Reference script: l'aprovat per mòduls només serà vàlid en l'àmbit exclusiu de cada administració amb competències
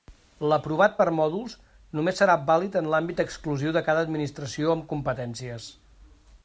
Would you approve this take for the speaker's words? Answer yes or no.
yes